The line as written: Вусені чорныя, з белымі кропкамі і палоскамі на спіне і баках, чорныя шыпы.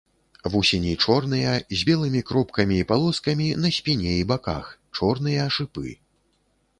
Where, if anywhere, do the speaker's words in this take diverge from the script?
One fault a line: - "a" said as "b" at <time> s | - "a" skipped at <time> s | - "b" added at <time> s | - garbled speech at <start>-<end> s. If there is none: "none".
none